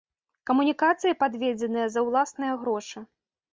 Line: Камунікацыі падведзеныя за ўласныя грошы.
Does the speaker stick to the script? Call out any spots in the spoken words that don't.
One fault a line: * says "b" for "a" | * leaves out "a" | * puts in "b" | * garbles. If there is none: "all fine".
all fine